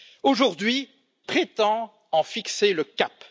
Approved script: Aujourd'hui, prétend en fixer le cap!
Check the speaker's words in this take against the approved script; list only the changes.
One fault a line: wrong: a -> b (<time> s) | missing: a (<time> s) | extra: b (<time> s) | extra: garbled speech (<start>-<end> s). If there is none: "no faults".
no faults